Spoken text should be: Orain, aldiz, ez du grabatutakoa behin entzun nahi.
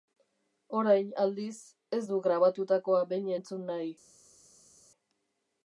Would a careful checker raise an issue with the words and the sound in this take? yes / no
no